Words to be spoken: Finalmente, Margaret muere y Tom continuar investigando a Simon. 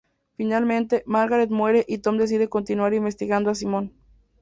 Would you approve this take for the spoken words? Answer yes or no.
no